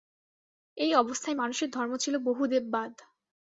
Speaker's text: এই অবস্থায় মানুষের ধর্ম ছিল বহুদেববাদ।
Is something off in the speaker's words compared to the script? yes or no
no